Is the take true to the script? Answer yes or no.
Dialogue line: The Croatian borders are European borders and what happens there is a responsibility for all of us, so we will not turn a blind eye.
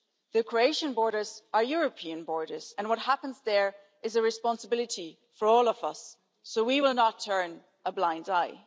yes